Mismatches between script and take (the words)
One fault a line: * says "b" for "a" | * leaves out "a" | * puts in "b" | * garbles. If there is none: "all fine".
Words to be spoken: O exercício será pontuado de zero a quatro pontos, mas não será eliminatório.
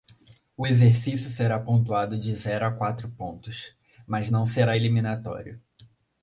all fine